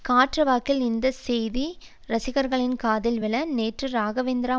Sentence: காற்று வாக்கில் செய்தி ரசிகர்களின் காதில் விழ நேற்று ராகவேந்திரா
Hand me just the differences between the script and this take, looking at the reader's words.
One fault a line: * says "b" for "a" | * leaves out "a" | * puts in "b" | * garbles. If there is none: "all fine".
* puts in "இந்த"